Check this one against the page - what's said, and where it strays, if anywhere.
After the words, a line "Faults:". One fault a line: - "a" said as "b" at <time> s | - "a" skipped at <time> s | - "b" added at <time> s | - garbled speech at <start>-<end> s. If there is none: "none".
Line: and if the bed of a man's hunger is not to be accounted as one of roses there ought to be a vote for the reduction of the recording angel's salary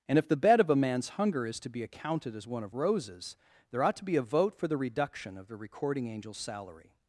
and if the bed of a man's hunger is to be accounted as one of roses there ought to be a vote for the reduction of the recording angel's salary
Faults:
- "not" skipped at 1.6 s